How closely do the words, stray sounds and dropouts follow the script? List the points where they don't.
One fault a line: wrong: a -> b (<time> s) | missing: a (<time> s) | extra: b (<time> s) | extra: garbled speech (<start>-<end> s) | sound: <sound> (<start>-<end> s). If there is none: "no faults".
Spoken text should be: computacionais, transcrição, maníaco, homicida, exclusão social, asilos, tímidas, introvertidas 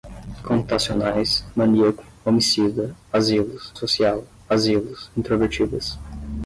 missing: transcrição (1.4 s)
wrong: exclusão -> asilos (3.1 s)
missing: tímidas (5.1 s)